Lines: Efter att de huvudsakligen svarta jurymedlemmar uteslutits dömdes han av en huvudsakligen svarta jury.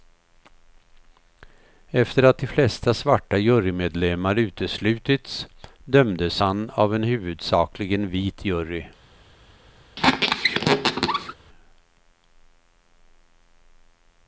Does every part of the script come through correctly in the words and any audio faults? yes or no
no